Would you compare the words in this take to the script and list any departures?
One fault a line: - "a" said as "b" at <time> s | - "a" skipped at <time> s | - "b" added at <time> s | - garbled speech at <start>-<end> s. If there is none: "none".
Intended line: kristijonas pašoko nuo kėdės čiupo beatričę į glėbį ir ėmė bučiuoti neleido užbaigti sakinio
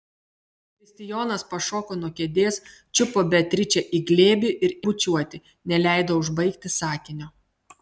- "ėmė" skipped at 4.7 s